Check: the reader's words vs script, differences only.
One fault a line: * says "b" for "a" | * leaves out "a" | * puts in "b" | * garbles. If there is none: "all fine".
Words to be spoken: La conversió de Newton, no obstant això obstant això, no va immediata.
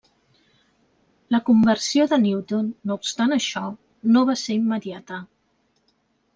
* leaves out "obstant això"
* puts in "ser"